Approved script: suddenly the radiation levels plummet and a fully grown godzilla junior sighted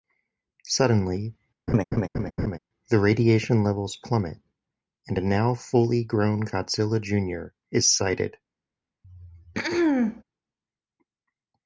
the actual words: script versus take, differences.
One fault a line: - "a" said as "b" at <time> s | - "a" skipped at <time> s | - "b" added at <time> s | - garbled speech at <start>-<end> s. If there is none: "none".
- "now" added at 5.2 s
- "is" added at 7.7 s